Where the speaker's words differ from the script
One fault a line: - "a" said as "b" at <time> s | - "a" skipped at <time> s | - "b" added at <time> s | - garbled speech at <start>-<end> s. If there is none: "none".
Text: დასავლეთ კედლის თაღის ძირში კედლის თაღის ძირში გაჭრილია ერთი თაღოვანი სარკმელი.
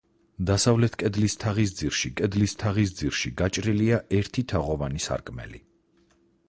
none